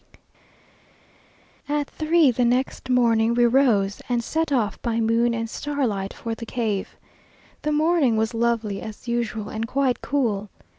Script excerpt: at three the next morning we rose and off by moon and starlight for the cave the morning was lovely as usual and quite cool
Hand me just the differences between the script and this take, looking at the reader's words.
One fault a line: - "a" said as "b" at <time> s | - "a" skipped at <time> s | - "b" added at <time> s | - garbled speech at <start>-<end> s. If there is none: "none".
- "set" added at 4.2 s